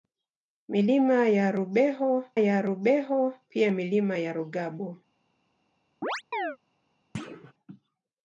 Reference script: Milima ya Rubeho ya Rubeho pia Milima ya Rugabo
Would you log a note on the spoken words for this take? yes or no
no